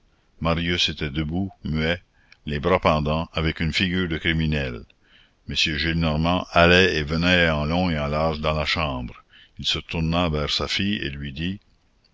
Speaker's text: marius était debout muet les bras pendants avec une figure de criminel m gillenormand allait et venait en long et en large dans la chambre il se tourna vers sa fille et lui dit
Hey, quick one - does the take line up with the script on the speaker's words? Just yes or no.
yes